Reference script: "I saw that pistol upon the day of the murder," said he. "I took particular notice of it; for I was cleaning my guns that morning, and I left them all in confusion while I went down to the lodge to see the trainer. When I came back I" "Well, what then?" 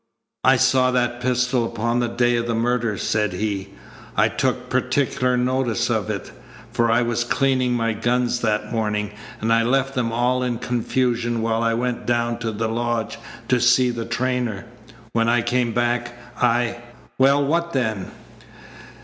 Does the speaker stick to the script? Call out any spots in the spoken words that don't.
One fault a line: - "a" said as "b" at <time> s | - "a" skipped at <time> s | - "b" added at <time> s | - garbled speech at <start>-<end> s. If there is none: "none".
none